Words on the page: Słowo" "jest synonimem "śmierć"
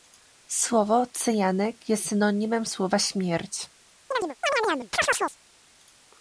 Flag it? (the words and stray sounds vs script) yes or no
yes